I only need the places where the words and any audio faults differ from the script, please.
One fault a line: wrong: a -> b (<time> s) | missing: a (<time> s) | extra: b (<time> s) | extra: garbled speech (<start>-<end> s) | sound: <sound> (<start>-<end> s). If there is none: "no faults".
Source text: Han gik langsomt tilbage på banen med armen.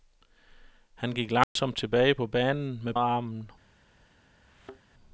sound: dropout (1.4-1.6 s)
sound: thud (4.5-4.8 s)